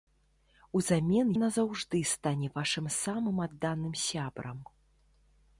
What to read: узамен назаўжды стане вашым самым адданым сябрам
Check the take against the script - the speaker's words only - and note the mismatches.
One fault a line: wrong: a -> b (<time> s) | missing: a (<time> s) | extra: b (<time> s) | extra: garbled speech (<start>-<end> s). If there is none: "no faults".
no faults